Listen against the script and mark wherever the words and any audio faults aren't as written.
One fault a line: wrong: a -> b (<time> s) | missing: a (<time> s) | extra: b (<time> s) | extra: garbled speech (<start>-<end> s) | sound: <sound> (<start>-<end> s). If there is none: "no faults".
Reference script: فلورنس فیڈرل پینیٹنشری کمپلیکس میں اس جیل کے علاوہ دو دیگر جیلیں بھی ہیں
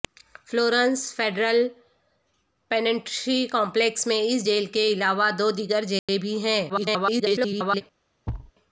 sound: dropout (6.0-6.1 s)
extra: garbled speech (6.7-7.8 s)
sound: thud (8.3-8.5 s)